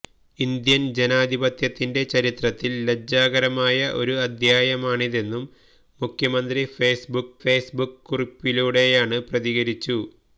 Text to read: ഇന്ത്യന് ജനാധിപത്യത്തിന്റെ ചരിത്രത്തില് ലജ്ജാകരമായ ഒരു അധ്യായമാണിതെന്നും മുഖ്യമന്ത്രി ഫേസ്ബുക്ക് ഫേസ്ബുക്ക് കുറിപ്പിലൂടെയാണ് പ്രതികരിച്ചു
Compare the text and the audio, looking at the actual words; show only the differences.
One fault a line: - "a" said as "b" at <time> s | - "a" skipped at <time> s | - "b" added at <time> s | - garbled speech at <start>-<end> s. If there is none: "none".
none